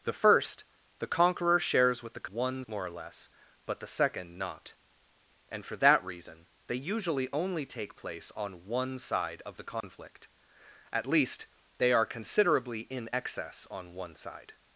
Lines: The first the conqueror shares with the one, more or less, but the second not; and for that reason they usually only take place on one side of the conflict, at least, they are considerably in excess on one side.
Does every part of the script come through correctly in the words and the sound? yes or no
no